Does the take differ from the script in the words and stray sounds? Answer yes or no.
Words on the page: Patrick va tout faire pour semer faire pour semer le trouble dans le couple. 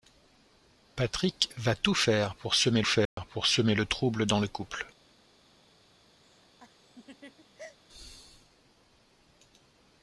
yes